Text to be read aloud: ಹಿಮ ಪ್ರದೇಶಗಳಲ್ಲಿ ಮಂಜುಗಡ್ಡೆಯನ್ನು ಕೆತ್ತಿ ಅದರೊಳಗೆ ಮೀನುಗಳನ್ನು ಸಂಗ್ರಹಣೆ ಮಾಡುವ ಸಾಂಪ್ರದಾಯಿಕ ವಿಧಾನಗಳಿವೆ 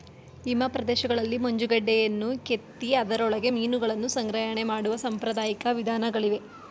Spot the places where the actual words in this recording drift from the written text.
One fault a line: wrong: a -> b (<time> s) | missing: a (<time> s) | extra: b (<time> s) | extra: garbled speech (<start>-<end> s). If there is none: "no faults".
no faults